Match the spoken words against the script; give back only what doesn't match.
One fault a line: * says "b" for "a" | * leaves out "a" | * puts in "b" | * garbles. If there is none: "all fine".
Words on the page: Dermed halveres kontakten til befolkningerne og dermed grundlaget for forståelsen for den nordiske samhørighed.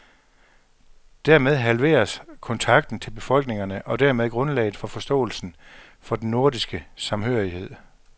all fine